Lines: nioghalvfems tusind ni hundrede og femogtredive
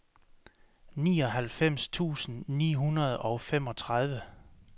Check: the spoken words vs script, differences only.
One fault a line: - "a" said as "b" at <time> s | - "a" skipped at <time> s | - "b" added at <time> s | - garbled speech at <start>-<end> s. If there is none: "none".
none